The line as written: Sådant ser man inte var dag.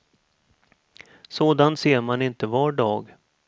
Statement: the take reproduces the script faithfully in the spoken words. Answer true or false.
true